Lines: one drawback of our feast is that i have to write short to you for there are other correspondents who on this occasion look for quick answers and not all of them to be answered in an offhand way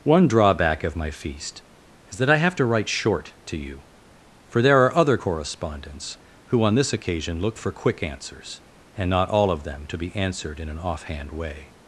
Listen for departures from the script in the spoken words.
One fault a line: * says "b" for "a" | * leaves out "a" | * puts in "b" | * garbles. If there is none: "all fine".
* says "my" for "our"